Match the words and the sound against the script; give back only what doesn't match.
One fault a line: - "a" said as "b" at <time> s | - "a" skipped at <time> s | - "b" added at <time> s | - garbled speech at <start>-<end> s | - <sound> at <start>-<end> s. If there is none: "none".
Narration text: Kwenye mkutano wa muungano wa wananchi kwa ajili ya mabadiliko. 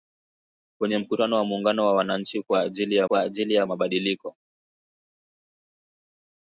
- "kwa ajili ya" added at 3.0 s